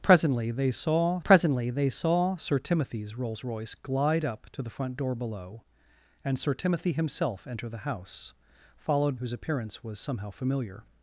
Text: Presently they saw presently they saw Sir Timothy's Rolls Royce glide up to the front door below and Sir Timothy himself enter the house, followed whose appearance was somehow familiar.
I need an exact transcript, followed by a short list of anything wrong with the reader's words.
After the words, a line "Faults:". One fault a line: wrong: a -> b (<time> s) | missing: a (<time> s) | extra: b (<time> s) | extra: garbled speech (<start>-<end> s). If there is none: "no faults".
Presently they saw presently they saw Sir Timothy's Rolls Royce glide up to the front door below and Sir Timothy himself enter the house, followed whose appearance was somehow familiar.
Faults:
no faults